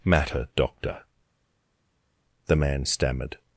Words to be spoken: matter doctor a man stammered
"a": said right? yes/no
no